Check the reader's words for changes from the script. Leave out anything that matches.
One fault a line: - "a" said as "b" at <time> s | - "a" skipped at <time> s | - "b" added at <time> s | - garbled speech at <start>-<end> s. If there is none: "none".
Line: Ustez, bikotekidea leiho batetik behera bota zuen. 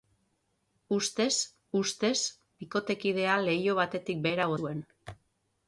- "ustez" added at 1.8 s
- "bota" skipped at 4.5 s